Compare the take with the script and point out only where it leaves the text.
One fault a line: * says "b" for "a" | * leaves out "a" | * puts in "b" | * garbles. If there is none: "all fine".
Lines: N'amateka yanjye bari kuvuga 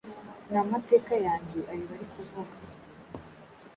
* puts in "ayo"